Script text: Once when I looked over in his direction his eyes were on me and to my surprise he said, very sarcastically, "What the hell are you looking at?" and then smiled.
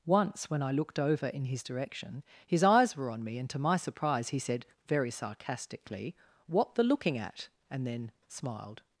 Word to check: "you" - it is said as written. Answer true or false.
false